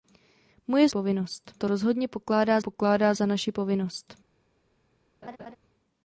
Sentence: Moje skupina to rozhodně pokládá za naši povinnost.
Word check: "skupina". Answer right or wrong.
wrong